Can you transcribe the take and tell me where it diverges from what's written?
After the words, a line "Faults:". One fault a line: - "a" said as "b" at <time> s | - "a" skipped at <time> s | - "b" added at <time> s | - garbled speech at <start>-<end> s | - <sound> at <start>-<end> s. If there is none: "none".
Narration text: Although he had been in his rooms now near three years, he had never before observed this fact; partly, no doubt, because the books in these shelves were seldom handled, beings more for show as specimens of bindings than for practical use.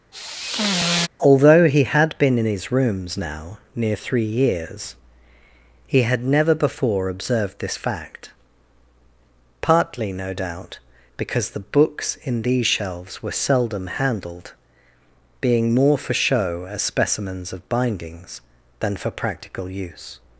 Although he had been in his rooms now near three years, he had never before observed this fact; partly, no doubt, because the books in these shelves were seldom handled, being more for show as specimens of bindings than for practical use.
Faults:
- sigh at 0.1-1.1 s
- "beings" said as "being" at 15.4 s